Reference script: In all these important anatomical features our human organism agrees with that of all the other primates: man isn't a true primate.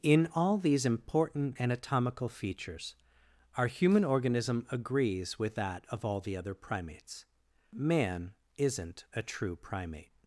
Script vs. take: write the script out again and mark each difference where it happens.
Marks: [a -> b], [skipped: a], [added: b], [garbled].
In all these important anatomical features our human organism agrees with that of all the other primates: man isn't a true primate.